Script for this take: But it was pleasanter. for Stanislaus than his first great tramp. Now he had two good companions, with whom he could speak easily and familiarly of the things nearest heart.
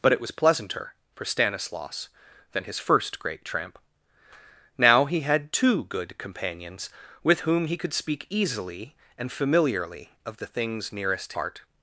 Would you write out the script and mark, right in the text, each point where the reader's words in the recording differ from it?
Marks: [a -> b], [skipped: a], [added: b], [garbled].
But it was pleasanter. for Stanislaus than his first great tramp. Now he had two good companions, with whom he could speak easily and familiarly of the things nearest heart.